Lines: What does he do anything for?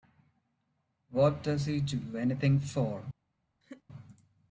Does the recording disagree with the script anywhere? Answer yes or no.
no